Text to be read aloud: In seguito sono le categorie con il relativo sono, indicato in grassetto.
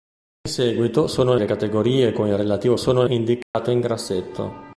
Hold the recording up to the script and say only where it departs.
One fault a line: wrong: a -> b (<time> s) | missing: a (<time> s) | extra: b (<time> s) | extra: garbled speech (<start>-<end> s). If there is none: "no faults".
no faults